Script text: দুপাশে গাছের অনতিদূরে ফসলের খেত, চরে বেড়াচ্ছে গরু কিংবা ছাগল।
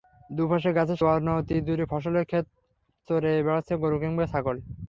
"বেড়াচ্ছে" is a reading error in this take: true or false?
false